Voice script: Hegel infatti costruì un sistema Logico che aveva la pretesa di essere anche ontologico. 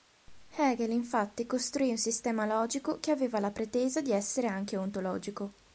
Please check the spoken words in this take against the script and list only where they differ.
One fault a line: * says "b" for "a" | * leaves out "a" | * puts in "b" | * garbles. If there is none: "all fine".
all fine